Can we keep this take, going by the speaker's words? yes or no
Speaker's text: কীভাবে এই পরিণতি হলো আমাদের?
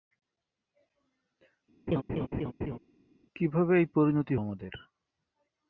no